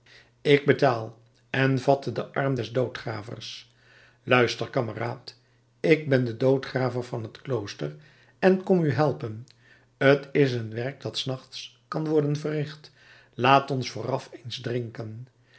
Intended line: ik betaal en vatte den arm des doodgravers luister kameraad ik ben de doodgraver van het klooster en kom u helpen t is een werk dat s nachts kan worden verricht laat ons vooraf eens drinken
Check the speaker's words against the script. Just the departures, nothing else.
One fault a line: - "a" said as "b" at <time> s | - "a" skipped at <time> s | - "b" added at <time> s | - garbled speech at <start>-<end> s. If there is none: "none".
none